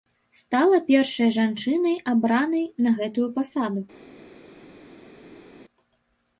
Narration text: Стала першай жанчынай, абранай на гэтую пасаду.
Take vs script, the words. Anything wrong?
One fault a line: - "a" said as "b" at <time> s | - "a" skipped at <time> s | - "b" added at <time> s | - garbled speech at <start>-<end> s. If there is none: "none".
none